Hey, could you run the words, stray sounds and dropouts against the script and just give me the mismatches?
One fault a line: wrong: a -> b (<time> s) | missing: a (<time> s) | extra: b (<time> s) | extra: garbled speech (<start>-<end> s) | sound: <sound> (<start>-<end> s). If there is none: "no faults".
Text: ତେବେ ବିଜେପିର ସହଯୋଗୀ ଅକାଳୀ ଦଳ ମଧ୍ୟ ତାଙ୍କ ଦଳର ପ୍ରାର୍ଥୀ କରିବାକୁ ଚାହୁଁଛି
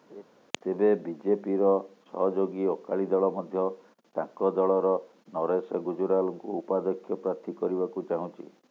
sound: laugh (0.1-0.2 s)
extra: ନରେଶ ଗୁଜରାଲଙ୍କୁ ଉପାଧ୍ୟକ୍ଷ (5.3 s)